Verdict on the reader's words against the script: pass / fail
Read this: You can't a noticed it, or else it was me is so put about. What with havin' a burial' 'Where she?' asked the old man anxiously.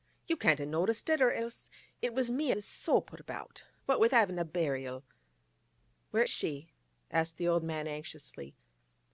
pass